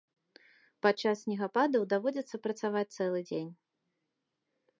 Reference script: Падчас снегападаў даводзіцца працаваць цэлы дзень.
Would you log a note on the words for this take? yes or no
no